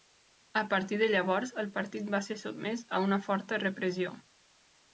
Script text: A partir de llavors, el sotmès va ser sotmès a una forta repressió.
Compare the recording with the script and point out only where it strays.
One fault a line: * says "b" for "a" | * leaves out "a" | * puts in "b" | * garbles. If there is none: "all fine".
* says "partit" for "sotmès"